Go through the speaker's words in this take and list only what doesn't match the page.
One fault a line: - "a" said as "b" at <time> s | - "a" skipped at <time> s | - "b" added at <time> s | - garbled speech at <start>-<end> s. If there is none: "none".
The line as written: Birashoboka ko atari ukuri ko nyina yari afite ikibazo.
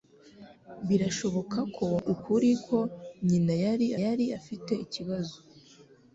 - "atari" skipped at 1.9 s
- "yari" added at 4.0 s